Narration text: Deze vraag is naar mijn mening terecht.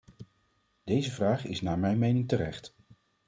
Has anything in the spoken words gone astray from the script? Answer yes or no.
no